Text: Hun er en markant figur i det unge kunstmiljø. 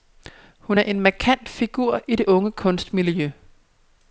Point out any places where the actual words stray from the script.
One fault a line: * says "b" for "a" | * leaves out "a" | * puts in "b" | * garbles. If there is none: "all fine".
all fine